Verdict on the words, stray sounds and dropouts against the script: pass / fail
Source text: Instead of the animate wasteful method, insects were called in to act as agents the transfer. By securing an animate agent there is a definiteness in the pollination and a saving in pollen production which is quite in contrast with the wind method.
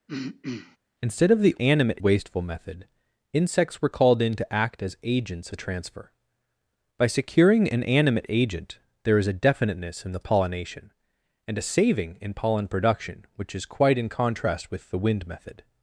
fail